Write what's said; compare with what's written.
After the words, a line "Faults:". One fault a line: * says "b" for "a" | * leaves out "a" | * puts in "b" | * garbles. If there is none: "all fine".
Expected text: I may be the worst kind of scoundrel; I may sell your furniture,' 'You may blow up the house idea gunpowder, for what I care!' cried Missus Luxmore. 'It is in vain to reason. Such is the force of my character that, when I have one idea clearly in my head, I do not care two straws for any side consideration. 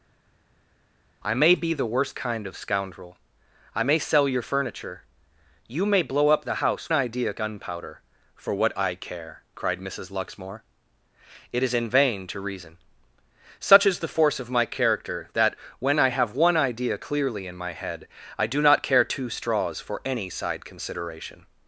I may be the worst kind of scoundrel; I may sell your furniture,' 'You may blow up the house idea gunpowder, for what I care!' cried Missus Luxmore. 'It is in vain to reason. Such is the force of my character that, when I have one idea clearly in my head, I do not care two straws for any side consideration.
Faults:
all fine